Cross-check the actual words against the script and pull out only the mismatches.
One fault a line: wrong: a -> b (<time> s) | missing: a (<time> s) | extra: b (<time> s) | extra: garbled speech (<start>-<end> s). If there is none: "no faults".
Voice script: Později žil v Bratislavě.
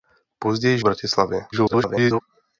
missing: žil (0.8 s)
extra: garbled speech (1.5-2.2 s)